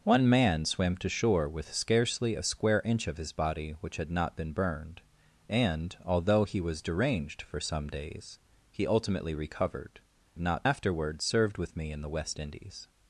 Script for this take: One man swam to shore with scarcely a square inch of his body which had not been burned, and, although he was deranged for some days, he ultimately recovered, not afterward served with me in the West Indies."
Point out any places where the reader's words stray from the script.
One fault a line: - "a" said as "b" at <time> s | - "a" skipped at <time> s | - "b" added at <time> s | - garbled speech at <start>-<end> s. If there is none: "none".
none